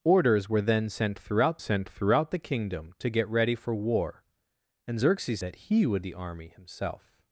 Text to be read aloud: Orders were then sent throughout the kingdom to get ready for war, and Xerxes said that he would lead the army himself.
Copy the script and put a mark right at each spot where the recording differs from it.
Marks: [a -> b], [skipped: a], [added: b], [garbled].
Orders were then sent throughout [added: sent throughout] the kingdom to get ready for war, and Xerxes [skipped: said] that he would [skipped: lead] the army himself.